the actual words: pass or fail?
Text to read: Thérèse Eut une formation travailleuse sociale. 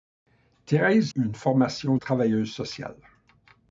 pass